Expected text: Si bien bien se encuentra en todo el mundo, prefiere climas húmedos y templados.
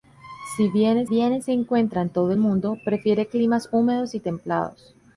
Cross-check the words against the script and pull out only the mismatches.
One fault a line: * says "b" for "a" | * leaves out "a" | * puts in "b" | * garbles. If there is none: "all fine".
all fine